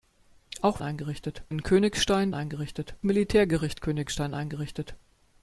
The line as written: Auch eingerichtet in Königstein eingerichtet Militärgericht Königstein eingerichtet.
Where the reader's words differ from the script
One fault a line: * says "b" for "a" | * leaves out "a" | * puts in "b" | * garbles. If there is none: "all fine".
all fine